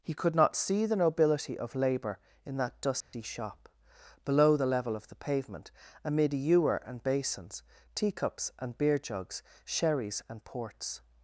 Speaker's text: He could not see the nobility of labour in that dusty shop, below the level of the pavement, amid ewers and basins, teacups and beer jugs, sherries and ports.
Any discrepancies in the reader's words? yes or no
yes